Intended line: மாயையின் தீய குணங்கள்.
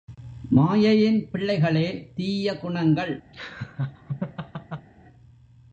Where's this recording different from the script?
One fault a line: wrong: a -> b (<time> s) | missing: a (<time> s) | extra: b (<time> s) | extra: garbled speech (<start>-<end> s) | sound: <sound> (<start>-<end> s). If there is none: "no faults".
extra: பிள்ளைகளே (1.3 s)
sound: laugh (3.3-4.9 s)